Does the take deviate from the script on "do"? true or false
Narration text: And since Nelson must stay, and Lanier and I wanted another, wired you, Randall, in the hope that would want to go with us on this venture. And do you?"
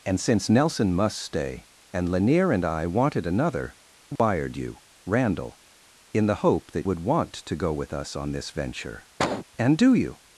false